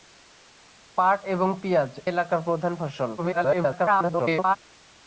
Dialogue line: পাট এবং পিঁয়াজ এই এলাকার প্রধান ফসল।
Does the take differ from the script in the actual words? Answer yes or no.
yes